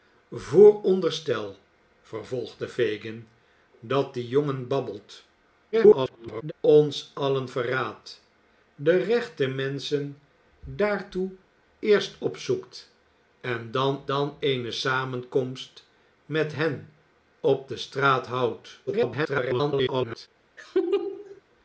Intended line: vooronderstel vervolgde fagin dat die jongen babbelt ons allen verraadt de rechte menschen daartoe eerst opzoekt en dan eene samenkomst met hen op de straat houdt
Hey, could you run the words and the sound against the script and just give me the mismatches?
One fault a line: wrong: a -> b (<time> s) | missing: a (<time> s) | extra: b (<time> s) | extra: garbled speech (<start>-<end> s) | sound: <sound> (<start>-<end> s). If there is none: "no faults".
extra: garbled speech (5.7-6.5 s)
extra: dan (14.1 s)
extra: garbled speech (18.9-20.3 s)
sound: laugh (20.6-21.4 s)